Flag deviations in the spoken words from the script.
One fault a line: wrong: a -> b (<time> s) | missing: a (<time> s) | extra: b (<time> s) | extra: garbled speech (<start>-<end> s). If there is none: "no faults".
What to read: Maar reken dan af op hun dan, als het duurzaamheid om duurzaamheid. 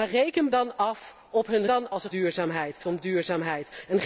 no faults